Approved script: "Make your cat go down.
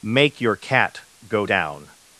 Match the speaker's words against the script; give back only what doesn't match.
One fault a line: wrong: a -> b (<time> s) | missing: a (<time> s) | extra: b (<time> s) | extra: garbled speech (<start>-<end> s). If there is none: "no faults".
no faults